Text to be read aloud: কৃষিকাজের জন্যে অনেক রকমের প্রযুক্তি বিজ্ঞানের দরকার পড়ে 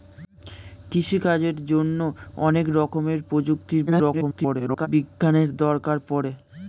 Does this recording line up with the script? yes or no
no